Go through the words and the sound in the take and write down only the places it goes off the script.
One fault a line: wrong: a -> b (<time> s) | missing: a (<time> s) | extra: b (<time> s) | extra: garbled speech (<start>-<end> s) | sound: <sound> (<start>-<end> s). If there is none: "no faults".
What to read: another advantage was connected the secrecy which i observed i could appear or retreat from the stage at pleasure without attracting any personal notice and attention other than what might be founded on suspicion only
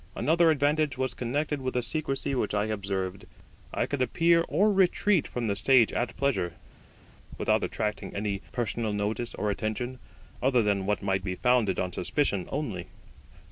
extra: with (1.6 s)
wrong: and -> or (9.3 s)